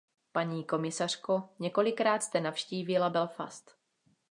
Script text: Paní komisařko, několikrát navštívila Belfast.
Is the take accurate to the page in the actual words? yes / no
no